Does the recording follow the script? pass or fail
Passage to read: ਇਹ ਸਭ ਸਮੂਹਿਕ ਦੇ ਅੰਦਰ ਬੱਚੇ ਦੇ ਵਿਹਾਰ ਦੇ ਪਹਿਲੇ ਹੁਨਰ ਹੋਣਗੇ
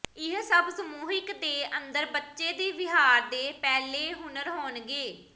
pass